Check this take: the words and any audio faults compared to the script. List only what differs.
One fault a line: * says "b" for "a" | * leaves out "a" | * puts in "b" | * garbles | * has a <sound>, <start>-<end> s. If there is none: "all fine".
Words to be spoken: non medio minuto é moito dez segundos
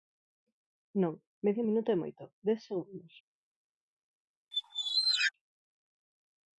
* has a squeak, 4.5-5.3 s